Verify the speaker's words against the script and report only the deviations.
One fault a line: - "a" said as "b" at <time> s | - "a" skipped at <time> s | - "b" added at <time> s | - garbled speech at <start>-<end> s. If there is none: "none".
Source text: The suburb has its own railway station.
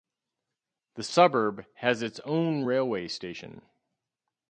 none